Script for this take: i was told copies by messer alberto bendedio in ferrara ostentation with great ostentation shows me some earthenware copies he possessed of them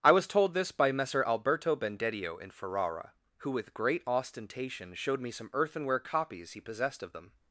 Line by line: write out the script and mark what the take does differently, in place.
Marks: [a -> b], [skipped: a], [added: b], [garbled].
i was told [copies -> this] by messer alberto bendedio in ferrara [ostentation -> who] with great ostentation [shows -> showed] me some earthenware copies he possessed of them